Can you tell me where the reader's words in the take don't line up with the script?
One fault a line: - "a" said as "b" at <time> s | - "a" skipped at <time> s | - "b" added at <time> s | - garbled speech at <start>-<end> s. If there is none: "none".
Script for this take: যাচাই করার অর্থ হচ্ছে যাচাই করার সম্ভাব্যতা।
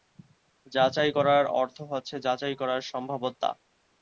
none